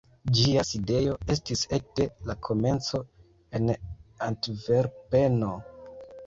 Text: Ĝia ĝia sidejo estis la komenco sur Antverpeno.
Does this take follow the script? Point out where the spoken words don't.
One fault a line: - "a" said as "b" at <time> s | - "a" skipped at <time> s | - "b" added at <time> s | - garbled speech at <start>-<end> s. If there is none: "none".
- "ĝia" skipped at 0.6 s
- "ekde" added at 1.8 s
- "sur" said as "en" at 3.6 s